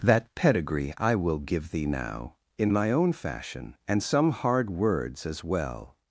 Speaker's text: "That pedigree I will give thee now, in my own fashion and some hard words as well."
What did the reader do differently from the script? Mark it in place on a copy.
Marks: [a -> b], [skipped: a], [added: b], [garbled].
"That pedigree I will give thee now, in my own fashion and some hard words as well."